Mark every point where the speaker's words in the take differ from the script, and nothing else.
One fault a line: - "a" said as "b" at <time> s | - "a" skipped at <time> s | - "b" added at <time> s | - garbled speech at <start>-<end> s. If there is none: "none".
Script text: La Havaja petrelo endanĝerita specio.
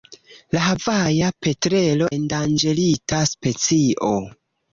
none